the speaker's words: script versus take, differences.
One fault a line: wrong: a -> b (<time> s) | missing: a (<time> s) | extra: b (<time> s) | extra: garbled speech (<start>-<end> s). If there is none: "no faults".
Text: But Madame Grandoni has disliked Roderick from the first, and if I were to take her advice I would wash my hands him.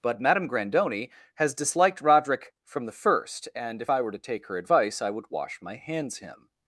no faults